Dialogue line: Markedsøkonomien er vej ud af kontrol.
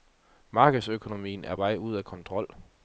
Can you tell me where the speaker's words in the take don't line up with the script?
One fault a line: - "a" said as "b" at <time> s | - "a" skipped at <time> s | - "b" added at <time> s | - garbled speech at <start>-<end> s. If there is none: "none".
none